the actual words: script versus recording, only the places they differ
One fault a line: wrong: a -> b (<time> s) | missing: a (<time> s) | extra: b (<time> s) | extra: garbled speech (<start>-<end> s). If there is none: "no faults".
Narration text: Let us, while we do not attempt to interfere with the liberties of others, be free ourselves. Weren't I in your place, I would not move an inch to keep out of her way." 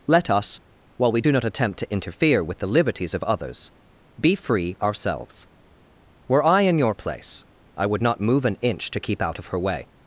wrong: Weren't -> Were (6.3 s)